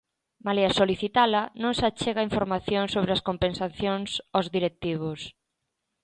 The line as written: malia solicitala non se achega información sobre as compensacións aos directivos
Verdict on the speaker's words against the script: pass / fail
pass